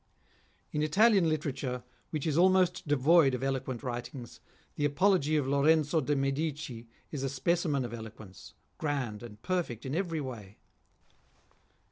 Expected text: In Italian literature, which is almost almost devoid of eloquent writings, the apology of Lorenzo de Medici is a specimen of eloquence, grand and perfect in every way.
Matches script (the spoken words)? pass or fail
fail